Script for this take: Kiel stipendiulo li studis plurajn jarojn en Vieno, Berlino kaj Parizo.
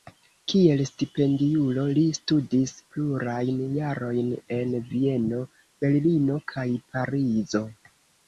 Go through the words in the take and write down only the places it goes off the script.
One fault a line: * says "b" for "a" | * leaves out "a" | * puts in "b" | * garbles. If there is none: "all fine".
all fine